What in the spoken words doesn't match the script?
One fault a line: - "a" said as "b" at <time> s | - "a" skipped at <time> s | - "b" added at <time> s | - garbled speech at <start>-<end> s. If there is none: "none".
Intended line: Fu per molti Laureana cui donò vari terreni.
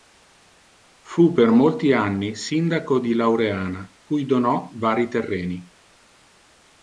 - "anni Sindaco di" added at 1.9 s